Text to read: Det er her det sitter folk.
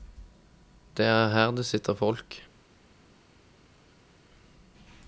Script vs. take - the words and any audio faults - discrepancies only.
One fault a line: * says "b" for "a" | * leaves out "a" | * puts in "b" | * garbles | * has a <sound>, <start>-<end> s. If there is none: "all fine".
all fine